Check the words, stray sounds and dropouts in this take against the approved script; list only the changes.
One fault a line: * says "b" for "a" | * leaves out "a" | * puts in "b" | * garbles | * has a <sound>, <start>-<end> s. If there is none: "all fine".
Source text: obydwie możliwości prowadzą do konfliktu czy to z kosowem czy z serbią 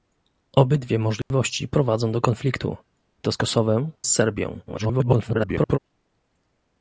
* has a dropout, 1.2-1.3 s
* leaves out "czy"
* leaves out "czy"
* garbles